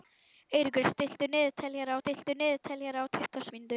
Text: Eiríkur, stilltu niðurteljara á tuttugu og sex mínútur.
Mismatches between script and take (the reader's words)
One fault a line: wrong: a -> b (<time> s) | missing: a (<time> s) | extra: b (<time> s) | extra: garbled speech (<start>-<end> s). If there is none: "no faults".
extra: stilltu niðurteljara (2.0 s)
missing: sex (3.5 s)